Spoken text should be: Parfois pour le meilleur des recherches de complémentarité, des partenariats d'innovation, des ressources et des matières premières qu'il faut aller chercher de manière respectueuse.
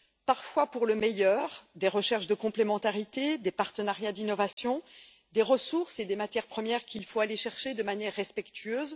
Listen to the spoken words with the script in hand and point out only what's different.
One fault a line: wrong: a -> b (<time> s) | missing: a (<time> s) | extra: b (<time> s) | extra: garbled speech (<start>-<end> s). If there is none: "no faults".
no faults